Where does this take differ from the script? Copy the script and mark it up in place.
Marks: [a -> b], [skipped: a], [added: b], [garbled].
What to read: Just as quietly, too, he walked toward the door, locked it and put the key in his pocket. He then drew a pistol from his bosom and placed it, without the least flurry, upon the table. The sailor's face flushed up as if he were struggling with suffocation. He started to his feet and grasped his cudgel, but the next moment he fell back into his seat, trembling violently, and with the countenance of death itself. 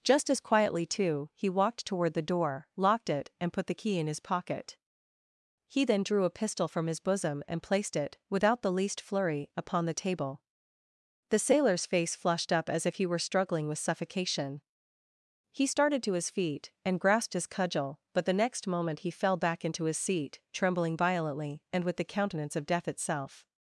Just as quietly, too, he walked toward the door, locked it and put the key in his pocket. He then drew a pistol from his bosom and placed it, without the least flurry, upon the table. The sailor's face flushed up as if he were struggling with suffocation. He started to his feet and grasped his cudgel, but the next moment he fell back into his seat, trembling violently, and with the countenance of death itself.